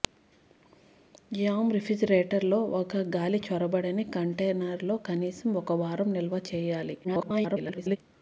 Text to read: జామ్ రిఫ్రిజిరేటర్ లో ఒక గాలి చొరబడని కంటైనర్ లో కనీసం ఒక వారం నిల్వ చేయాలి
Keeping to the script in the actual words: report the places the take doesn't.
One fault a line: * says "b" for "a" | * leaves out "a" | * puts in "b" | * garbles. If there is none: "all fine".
* garbles